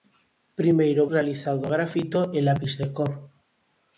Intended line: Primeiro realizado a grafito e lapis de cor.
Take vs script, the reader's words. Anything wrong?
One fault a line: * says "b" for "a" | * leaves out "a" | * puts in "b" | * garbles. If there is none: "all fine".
all fine